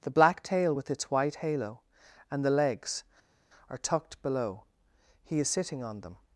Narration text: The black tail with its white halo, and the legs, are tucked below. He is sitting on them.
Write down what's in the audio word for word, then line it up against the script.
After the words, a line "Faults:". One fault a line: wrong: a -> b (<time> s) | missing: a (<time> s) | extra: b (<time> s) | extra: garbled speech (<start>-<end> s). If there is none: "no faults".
The black tail with its white halo, and the legs, are tucked below. He is sitting on them.
Faults:
no faults